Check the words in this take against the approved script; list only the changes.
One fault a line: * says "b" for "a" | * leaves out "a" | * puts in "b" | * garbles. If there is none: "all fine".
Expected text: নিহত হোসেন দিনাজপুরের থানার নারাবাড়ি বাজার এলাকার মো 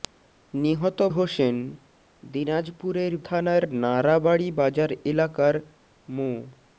all fine